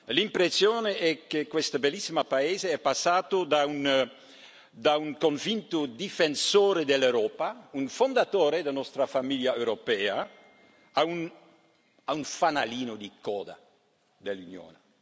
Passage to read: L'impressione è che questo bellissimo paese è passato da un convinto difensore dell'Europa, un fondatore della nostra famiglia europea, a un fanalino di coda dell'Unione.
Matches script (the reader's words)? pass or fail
pass